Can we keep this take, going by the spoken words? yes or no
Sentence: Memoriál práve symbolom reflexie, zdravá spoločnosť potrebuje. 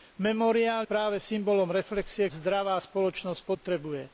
yes